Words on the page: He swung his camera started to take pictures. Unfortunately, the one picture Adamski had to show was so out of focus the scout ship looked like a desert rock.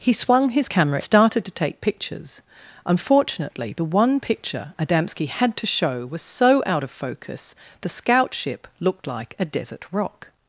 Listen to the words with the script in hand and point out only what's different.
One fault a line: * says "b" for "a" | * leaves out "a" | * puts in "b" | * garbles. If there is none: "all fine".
all fine